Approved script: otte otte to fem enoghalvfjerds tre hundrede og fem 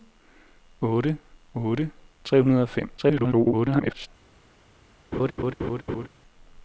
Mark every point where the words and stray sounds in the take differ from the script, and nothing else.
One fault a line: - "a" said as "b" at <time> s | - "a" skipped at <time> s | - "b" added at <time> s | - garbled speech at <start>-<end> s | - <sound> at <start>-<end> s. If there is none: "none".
- "to fem enoghalvfjerds" skipped at 1.9 s
- garbled speech at 3.0-4.1 s
- laugh at 5.1-6.1 s